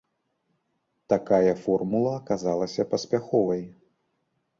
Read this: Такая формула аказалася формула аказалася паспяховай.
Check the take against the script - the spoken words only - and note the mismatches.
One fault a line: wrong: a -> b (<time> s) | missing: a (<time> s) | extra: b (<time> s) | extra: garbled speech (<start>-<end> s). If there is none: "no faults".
missing: формула аказалася (2.9 s)